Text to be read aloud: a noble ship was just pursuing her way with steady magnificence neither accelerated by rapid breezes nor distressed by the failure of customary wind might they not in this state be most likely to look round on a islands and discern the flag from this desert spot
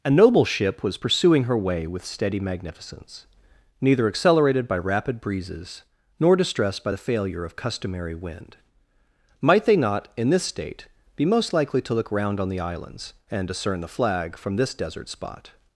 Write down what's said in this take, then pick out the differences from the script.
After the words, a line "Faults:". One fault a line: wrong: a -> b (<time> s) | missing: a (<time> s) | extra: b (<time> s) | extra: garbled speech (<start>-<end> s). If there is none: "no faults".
a noble ship was pursuing her way with steady magnificence neither accelerated by rapid breezes nor distressed by the failure of customary wind might they not in this state be most likely to look round on the islands and discern the flag from this desert spot
Faults:
missing: just (1.0 s)
wrong: a -> the (12.5 s)